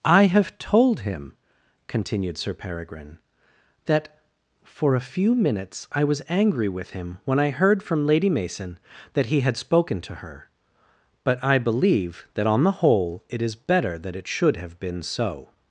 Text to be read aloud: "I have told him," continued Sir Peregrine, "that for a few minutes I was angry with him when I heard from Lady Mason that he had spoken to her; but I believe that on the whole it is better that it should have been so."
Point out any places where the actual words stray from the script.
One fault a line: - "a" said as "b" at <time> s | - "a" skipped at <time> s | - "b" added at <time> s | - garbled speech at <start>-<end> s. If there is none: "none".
none